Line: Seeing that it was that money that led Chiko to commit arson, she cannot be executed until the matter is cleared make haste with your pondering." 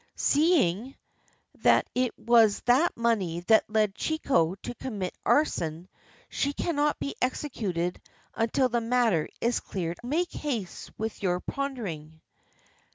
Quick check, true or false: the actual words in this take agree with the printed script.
true